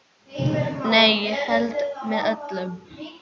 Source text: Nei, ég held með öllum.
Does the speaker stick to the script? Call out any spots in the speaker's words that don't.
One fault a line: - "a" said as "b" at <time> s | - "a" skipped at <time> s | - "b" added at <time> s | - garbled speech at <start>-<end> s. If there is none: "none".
none